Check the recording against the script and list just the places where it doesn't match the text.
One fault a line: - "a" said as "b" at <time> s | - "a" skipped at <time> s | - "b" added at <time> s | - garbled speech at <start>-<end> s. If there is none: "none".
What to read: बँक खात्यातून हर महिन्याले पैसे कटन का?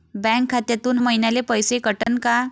- "हर" skipped at 1.0 s